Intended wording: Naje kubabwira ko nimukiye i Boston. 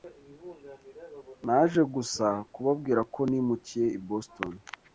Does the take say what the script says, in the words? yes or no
no